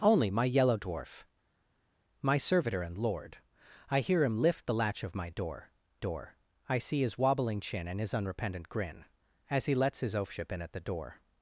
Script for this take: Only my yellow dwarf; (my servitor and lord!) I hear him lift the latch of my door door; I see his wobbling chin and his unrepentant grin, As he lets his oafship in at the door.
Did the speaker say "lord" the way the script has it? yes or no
yes